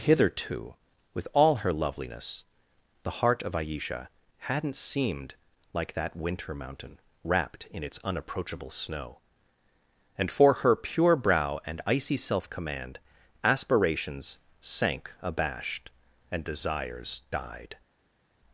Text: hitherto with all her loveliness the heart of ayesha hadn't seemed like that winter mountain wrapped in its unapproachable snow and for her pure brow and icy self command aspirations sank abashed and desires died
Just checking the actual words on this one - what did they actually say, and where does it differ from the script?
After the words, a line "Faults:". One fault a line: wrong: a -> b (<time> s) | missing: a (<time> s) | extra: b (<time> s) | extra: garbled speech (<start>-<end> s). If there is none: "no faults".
hitherto with all her loveliness the heart of ayesha hadn't seemed like that winter mountain wrapped in its unapproachable snow and for her pure brow and icy self command aspirations sank abashed and desires died
Faults:
no faults